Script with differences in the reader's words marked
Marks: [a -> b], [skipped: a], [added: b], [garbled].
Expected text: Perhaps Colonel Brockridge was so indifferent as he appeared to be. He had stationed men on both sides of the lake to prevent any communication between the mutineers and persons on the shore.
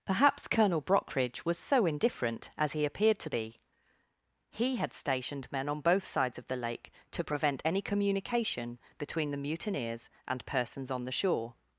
Perhaps Colonel Brockridge was so indifferent as he appeared to be. He had stationed men on both sides of the lake to prevent any communication between the mutineers and persons on the shore.